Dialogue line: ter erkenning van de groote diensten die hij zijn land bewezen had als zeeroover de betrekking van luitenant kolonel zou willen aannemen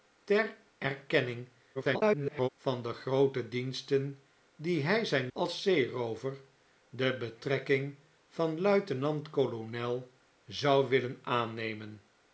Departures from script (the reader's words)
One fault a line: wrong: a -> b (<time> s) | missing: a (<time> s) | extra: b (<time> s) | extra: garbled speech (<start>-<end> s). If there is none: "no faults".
extra: garbled speech (1.7-2.5 s)
missing: land bewezen had (5.3 s)